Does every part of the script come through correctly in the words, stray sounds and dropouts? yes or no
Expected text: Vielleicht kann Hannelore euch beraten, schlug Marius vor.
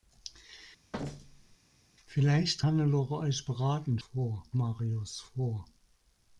no